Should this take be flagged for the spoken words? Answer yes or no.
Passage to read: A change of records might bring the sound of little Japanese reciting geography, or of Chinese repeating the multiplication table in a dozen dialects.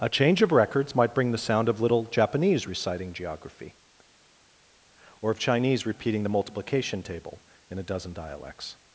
no